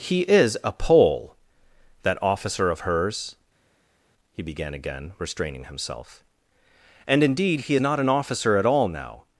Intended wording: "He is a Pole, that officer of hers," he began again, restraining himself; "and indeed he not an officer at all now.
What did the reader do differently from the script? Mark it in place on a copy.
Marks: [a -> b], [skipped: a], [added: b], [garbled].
"He is a Pole, that officer of hers," he began again, restraining himself; "and indeed he not an officer at all now.